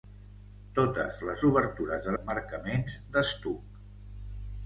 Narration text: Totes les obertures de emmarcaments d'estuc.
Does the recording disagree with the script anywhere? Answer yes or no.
no